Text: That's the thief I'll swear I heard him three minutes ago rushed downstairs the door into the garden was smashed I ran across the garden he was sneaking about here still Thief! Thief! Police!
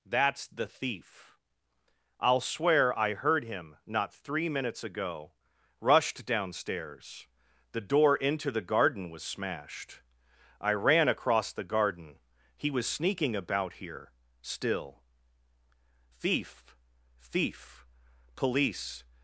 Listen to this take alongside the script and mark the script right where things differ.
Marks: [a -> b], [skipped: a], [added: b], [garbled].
That's the thief I'll swear I heard him [added: not] three minutes ago rushed downstairs the door into the garden was smashed I ran across the garden he was sneaking about here still Thief! Thief! Police!